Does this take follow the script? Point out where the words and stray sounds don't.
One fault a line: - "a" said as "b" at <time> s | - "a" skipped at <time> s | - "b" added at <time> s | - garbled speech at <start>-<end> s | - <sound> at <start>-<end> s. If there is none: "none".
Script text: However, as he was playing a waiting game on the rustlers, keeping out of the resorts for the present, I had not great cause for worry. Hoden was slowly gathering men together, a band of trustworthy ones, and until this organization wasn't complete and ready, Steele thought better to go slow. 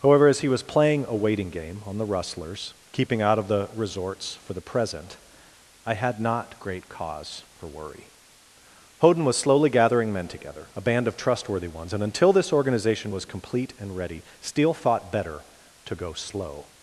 - "wasn't" said as "was" at 13.1 s